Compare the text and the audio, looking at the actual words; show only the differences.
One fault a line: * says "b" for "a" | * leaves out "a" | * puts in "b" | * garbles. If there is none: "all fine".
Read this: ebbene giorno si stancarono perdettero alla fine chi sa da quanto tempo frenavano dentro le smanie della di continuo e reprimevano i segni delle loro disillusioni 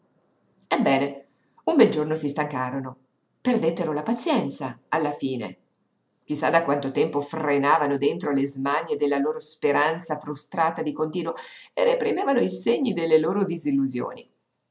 * puts in "un bel"
* puts in "la pazienza"
* puts in "loro speranza frustrata"